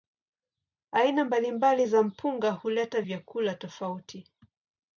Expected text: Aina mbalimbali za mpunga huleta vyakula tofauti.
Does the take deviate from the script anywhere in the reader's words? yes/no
no